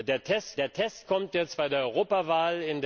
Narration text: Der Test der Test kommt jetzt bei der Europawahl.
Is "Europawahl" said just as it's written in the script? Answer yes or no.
yes